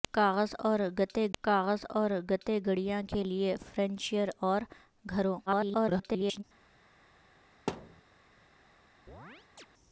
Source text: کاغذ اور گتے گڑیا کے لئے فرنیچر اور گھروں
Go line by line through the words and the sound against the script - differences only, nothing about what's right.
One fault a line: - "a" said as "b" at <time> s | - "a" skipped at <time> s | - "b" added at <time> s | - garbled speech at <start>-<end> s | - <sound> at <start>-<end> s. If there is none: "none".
- "کاغذ اور گتے" added at 1.4 s
- garbled speech at 5.5-6.4 s
- thud at 7.7-8.0 s
- chirp at 9.1-9.7 s